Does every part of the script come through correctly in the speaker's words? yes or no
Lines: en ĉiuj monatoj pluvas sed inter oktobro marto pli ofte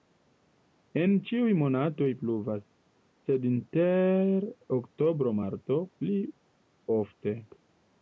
yes